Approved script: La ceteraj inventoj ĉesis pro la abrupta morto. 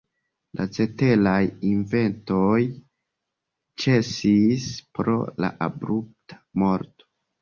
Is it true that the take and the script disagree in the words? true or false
false